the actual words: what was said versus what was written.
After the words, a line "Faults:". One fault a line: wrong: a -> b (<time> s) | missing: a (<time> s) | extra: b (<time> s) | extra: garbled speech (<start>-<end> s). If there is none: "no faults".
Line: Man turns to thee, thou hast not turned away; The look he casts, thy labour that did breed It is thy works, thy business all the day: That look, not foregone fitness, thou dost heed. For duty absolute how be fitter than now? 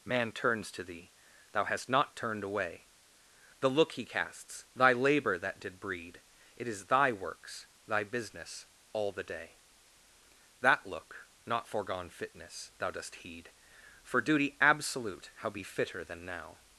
Man turns to thee, thou hast not turned away; The look he casts, thy labour that did breed It is thy works, thy business all the day: That look, not foregone fitness, thou dost heed. For duty absolute how be fitter than now?
Faults:
no faults